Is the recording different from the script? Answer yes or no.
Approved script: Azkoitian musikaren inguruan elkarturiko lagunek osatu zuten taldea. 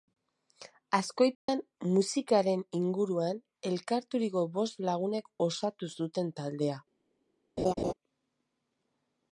yes